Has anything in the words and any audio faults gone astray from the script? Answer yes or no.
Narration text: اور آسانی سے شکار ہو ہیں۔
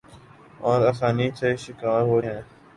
no